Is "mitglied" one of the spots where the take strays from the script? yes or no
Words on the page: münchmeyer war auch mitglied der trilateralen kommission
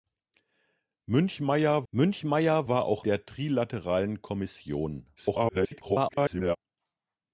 yes